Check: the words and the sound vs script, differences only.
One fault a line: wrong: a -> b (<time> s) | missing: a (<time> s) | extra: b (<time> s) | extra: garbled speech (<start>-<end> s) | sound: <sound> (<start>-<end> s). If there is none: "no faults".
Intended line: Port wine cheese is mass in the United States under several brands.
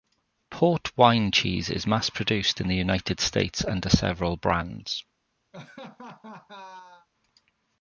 extra: produced (2.1 s)
sound: laugh (5.5-7.1 s)